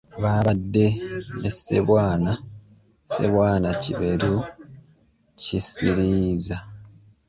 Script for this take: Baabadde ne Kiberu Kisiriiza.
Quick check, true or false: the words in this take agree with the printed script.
false